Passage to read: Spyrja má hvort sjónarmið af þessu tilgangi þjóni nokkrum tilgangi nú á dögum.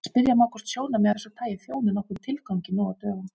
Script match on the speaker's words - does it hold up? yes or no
no